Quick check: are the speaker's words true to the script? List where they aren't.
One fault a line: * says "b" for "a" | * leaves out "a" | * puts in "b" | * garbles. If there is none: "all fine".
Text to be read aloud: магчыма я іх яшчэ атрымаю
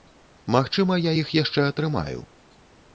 all fine